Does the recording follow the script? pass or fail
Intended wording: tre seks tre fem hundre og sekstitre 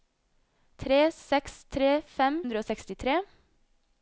pass